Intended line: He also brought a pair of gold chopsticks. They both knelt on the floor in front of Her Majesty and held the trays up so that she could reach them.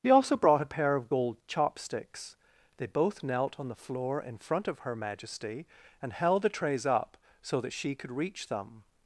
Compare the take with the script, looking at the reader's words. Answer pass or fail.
pass